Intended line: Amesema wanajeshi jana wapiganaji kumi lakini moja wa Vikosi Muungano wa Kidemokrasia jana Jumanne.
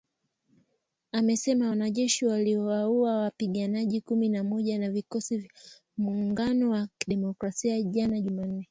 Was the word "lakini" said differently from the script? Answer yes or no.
yes